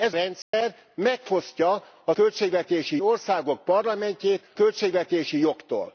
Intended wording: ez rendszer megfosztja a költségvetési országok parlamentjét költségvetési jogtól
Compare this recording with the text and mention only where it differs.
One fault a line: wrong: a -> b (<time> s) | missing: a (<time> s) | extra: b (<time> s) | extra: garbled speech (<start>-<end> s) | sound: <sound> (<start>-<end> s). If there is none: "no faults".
sound: dropout (0.4-0.5 s)